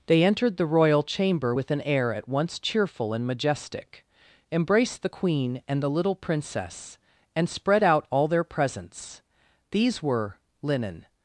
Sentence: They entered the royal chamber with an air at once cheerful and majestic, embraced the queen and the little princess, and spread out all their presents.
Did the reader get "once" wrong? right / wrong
right